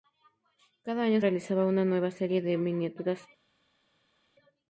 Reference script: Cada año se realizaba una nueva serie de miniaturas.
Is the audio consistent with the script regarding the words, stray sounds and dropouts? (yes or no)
no